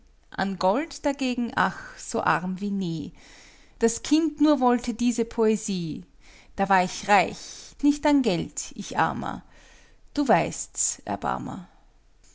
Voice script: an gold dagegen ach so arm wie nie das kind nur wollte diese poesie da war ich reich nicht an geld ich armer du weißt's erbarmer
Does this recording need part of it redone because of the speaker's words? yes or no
no